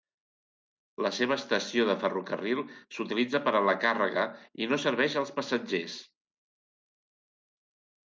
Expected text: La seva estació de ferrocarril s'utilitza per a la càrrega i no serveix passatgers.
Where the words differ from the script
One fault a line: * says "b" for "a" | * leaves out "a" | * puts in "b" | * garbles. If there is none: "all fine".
* puts in "als"